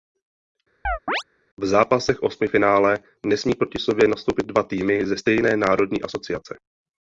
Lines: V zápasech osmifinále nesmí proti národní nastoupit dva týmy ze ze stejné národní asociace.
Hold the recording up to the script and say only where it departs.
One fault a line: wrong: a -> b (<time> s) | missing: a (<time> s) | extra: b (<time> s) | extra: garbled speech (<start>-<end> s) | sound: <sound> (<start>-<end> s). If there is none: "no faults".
sound: chirp (0.8-1.2 s)
wrong: národní -> sobě (3.8 s)
missing: ze (5.2 s)